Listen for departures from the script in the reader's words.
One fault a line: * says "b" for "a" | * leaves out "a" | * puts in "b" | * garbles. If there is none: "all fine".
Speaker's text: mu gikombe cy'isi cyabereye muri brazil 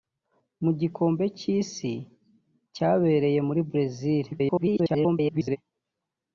* garbles